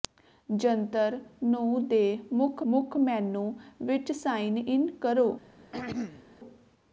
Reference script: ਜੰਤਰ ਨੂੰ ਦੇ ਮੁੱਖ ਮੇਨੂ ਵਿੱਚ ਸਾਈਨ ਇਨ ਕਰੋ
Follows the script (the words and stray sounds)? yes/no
no